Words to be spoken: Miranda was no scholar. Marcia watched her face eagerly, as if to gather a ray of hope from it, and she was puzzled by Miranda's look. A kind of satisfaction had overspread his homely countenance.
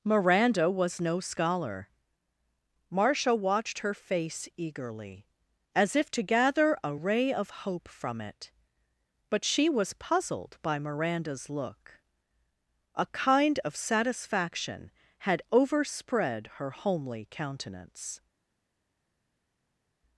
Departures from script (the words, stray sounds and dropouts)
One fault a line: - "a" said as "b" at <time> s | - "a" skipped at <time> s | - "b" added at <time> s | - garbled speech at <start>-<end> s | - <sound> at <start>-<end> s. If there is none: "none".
- "and" said as "but" at 9.3 s
- "his" said as "her" at 16.5 s